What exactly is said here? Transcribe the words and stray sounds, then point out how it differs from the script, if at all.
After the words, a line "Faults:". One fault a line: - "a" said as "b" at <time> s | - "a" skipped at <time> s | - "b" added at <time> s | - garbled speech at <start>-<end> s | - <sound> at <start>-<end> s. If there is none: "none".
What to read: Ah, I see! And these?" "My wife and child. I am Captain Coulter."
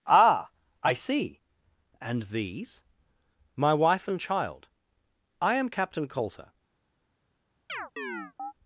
Ah, I see! And these?" "My wife and child. I am Captain Coulter."
Faults:
- chirp at 7.7-8.5 s